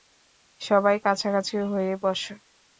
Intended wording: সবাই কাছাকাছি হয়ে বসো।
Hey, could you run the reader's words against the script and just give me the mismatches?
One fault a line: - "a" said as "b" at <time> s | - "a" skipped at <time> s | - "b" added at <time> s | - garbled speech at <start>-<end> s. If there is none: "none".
none